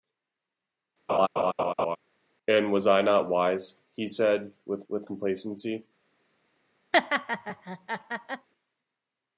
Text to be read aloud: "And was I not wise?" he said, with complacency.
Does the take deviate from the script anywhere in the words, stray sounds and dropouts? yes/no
yes